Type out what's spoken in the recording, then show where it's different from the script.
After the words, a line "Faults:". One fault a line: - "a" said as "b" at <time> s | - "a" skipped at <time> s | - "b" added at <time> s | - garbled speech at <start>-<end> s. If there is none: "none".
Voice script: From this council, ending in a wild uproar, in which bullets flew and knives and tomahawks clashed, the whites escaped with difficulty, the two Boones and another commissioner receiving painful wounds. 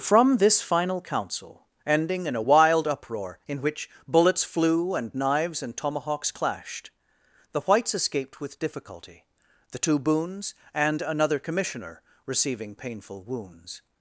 From this final council, ending in a wild uproar, in which bullets flew and knives and tomahawks clashed, the whites escaped with difficulty, the two Boones and another commissioner receiving painful wounds.
Faults:
- "final" added at 0.6 s